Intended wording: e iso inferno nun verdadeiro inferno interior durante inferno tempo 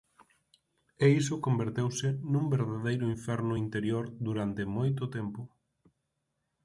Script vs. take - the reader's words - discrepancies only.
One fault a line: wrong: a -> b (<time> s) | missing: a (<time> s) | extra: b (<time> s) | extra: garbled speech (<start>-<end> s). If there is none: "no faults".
wrong: inferno -> converteuse (1.4 s)
wrong: inferno -> moito (4.8 s)